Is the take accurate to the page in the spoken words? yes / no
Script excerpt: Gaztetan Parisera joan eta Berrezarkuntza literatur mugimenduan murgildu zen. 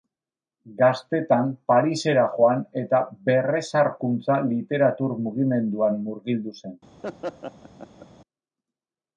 yes